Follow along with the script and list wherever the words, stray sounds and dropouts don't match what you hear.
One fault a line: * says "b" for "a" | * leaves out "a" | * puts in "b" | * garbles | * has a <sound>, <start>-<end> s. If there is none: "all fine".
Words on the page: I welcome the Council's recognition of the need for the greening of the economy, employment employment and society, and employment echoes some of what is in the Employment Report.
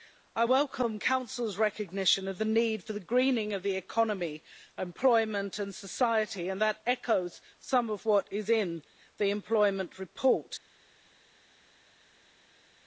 * leaves out "employment"
* says "that" for "employment"